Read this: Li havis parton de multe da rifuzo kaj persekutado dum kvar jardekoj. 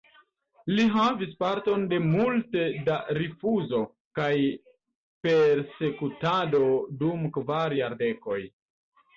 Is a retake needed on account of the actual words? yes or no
no